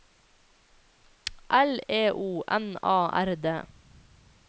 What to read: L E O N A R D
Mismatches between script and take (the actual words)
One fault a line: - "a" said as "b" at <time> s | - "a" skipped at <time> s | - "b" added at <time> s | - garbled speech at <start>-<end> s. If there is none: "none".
none